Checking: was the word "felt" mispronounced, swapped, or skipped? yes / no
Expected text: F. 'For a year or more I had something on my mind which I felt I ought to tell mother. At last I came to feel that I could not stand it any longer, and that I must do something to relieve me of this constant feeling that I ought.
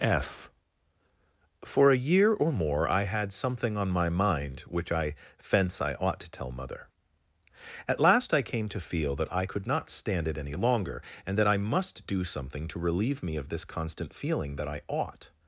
yes